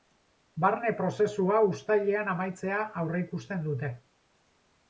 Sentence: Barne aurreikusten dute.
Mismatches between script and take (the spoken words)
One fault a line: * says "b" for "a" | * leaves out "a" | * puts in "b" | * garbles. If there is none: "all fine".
* puts in "prozesua uztailean amaitzea"